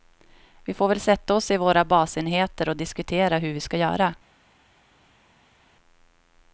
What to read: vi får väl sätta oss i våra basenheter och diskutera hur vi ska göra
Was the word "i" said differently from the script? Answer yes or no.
no